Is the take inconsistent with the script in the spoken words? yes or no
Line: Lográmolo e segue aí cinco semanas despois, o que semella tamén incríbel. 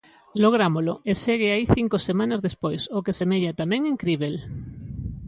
no